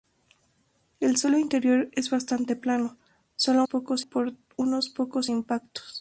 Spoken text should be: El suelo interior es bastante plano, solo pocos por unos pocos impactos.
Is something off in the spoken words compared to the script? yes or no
no